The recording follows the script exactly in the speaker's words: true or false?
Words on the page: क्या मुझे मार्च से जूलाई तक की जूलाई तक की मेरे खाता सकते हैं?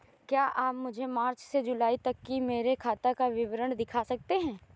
false